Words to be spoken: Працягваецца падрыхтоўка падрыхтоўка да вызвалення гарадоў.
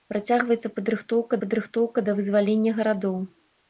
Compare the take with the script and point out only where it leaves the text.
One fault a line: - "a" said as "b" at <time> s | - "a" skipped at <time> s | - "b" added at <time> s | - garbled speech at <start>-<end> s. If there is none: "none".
none